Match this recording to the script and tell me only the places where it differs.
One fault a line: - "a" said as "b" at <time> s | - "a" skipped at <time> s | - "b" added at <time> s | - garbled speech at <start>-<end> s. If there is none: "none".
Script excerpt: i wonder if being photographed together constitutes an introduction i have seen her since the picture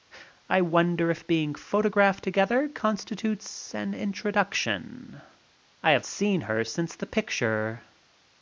none